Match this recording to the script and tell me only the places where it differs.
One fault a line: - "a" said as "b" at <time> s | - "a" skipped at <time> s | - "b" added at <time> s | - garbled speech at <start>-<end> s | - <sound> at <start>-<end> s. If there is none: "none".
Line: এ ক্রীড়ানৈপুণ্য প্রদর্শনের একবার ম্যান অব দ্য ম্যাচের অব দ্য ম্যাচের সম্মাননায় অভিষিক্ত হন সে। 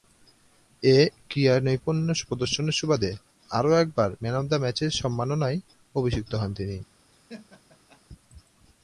- "সুবাদে আরও" added at 2.8 s
- "অব দ্য ম্যাচের" skipped at 4.9 s
- "সে" said as "তিনি" at 6.5 s
- laugh at 7.1-8.0 s